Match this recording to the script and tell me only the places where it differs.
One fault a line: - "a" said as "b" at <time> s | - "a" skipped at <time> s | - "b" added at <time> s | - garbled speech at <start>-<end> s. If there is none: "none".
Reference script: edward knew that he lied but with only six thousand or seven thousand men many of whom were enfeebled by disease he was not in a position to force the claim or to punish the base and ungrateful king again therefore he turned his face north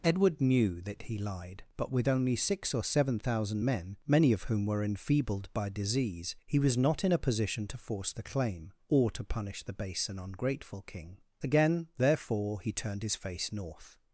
- "thousand" skipped at 2.7 s